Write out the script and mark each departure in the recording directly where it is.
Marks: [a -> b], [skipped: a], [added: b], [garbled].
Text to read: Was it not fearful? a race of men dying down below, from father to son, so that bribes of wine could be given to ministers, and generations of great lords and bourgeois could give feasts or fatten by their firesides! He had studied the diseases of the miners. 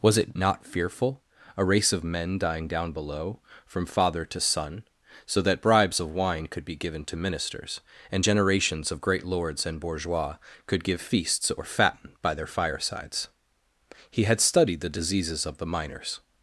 Was it not fearful? a race of men dying down below, from father to son, so that bribes of wine could be given to ministers, and generations of great lords and bourgeois could give feasts or fatten by their firesides! He had studied the diseases of the miners.